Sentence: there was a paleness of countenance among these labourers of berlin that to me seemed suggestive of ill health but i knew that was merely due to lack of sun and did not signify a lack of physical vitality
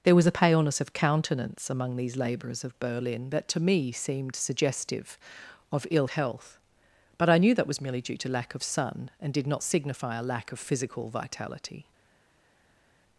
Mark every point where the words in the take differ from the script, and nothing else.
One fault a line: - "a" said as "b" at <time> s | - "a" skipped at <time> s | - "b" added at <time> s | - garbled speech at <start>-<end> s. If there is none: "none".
none